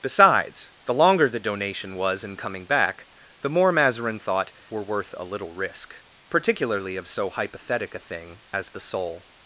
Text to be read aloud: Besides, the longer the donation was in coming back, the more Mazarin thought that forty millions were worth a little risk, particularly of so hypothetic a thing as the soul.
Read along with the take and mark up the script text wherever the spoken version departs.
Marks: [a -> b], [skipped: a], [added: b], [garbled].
Besides, the longer the donation was in coming back, the more Mazarin thought [skipped: that forty millions] were worth a little risk, particularly of so hypothetic a thing as the soul.